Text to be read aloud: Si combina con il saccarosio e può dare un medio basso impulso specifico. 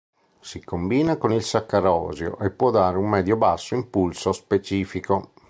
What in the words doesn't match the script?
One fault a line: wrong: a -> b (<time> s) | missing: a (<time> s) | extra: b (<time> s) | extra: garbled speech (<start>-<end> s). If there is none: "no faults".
no faults